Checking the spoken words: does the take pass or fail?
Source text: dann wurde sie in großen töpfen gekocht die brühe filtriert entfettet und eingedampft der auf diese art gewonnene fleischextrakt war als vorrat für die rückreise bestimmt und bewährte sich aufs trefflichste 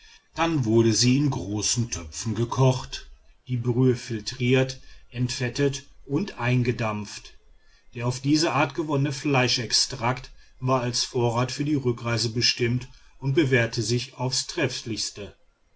pass